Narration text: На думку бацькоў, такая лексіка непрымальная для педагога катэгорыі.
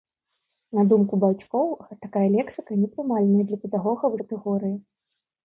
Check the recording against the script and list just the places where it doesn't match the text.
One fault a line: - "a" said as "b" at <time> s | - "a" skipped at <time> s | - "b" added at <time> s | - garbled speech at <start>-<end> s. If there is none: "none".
none